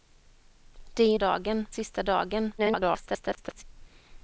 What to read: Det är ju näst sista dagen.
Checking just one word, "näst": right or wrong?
wrong